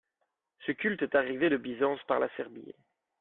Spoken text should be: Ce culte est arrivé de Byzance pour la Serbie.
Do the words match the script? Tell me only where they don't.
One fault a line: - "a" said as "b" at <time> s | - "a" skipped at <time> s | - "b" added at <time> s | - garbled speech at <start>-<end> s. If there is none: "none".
- "pour" said as "par" at 2.1 s